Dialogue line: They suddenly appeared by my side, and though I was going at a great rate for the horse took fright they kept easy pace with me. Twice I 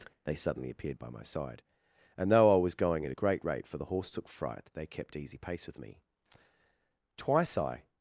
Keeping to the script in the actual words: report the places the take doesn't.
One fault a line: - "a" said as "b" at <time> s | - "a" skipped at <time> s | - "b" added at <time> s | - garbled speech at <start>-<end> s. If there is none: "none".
none